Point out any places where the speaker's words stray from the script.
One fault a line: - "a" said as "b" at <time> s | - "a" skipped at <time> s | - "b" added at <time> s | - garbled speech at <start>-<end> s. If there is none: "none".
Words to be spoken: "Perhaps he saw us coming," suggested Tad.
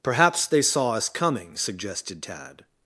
- "he" said as "they" at 0.5 s